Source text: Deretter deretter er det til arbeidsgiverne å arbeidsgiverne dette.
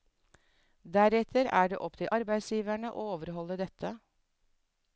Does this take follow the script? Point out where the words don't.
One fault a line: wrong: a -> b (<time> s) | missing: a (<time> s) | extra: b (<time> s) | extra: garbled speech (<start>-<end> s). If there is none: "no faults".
missing: deretter (1.5 s)
extra: opp (1.9 s)
wrong: arbeidsgiverne -> overholde (3.2 s)